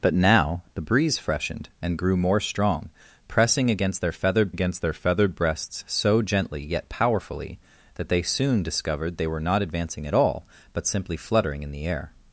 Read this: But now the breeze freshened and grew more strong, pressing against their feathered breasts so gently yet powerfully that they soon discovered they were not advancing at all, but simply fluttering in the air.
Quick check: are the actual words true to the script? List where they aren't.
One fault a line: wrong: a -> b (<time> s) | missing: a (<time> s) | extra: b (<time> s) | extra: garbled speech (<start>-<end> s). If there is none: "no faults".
extra: against their feathered (4.5 s)